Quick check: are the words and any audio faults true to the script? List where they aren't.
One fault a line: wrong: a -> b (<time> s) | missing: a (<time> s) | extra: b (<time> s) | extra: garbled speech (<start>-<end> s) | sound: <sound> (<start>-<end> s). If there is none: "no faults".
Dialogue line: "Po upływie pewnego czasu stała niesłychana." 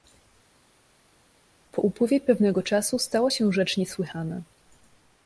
extra: się rzecz (3.3 s)